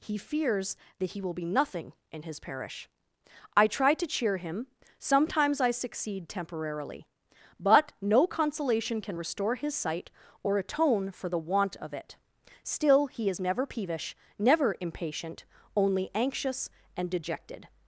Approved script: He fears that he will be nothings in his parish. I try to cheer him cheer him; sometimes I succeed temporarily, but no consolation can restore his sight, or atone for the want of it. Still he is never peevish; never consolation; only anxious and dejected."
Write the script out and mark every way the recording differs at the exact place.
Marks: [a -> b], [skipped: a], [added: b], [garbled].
He fears that he will be [nothings -> nothing] in his parish. I try to cheer him [skipped: cheer him;] sometimes I succeed temporarily, but no consolation can restore his sight, or atone for the want of it. Still he is never peevish; never [consolation; -> impatient] only anxious and dejected."